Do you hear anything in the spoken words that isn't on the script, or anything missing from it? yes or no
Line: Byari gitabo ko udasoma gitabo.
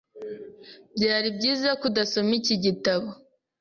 yes